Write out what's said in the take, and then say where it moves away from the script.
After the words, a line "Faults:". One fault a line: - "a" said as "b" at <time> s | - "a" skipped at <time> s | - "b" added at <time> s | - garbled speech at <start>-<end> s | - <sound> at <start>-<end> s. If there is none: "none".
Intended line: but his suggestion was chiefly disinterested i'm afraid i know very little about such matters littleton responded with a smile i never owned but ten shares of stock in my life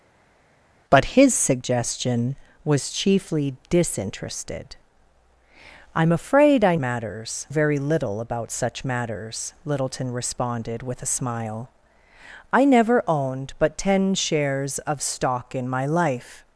but his suggestion was chiefly disinterested i'm afraid i matters very little about such matters littleton responded with a smile i never owned but ten shares of stock in my life
Faults:
- "know" said as "matters" at 6.8 s